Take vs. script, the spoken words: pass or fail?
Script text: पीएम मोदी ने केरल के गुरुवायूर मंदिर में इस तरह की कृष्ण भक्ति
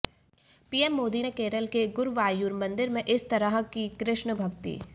pass